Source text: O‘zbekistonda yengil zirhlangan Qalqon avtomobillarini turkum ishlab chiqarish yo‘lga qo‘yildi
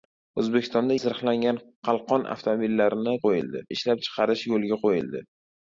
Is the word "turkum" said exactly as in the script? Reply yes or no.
no